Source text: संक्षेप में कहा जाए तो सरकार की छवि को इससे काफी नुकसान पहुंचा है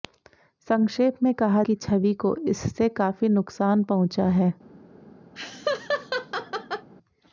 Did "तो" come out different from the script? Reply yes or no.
yes